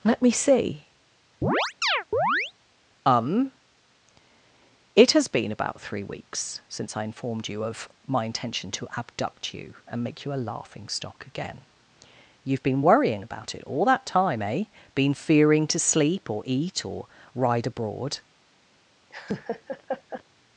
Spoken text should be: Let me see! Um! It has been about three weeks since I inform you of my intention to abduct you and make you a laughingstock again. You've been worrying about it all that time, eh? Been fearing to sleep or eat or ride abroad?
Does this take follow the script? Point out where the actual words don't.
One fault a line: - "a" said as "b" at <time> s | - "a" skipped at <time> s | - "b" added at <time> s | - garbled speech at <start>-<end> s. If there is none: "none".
- "inform" said as "informed" at 7.0 s